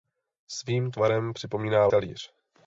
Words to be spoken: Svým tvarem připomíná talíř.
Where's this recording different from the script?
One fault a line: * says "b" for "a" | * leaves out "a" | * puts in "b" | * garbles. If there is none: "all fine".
all fine